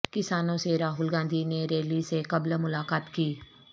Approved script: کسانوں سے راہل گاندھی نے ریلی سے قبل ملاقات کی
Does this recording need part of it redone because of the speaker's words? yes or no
no